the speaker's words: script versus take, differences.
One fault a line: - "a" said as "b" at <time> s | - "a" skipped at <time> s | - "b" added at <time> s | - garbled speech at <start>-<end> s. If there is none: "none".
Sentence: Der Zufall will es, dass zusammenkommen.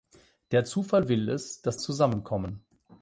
none